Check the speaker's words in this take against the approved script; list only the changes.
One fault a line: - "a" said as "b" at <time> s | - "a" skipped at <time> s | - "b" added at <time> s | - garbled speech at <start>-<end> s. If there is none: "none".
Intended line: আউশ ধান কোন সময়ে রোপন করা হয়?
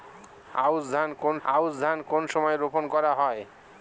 - "আউশ ধান কোন" added at 1.5 s